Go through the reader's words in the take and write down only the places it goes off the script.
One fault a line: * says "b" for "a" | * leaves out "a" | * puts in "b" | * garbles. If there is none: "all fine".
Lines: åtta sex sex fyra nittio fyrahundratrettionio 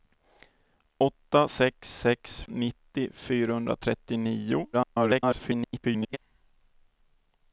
* leaves out "fyra"
* garbles